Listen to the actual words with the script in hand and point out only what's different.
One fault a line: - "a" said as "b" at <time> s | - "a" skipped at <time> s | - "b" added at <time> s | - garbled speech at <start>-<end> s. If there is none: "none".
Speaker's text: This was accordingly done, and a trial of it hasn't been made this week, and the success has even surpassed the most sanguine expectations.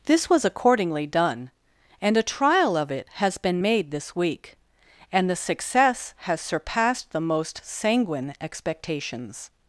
- "hasn't" said as "has" at 3.1 s
- "even" skipped at 6.4 s